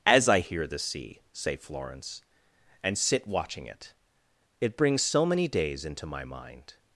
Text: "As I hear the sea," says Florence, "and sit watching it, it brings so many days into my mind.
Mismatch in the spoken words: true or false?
true